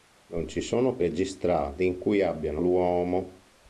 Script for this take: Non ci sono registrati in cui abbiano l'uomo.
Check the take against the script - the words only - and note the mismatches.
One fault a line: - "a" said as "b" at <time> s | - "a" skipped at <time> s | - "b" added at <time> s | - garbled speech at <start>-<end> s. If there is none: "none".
none